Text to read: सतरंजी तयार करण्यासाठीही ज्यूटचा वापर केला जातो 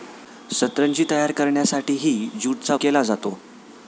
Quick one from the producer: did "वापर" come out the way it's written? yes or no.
no